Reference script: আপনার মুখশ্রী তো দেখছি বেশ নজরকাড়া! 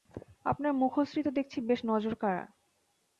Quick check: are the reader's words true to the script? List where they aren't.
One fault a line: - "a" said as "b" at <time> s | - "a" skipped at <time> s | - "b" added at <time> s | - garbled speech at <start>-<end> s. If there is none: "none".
none